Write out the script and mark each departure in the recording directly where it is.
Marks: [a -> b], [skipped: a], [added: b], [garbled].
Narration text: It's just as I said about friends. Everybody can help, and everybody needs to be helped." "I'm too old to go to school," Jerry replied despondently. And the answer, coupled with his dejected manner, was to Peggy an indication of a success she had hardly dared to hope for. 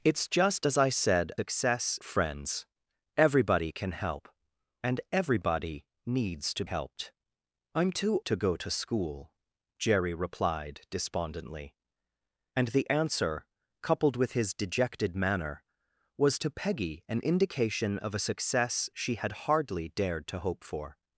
It's just as I said [about -> success] friends. Everybody can help, and everybody needs to [skipped: be] helped." "I'm too [skipped: old] to go to school," Jerry replied despondently. And the answer, coupled with his dejected manner, was to Peggy an indication of a success she had hardly dared to hope for.